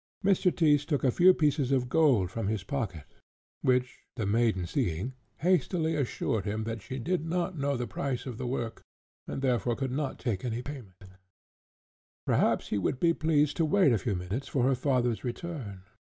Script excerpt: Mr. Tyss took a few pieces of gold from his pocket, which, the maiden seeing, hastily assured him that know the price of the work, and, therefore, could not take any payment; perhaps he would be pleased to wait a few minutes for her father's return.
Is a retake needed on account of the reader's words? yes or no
yes